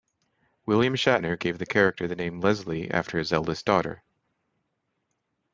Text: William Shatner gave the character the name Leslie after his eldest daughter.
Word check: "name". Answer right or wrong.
right